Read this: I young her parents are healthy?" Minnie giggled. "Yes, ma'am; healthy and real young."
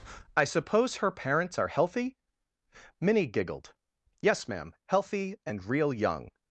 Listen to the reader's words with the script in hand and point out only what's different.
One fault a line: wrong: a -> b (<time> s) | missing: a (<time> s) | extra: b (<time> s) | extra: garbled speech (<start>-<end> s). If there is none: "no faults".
wrong: young -> suppose (0.5 s)